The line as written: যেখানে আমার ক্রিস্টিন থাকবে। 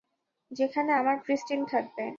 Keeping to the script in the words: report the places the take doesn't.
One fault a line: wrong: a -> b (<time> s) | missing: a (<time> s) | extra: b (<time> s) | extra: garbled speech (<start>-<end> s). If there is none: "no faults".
no faults